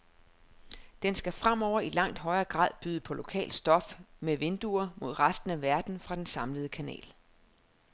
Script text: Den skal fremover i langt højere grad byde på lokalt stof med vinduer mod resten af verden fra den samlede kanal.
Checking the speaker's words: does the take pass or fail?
pass